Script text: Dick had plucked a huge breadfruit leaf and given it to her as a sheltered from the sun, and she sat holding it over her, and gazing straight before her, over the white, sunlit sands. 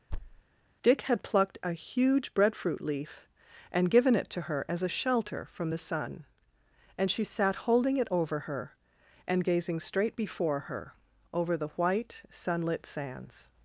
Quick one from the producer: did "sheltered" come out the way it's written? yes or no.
no